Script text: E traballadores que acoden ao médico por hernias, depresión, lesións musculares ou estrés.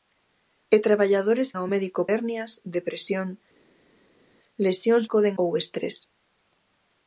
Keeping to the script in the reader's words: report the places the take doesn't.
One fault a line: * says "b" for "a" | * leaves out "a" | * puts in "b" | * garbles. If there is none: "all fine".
* leaves out "que acoden"
* leaves out "por"
* says "acoden" for "musculares"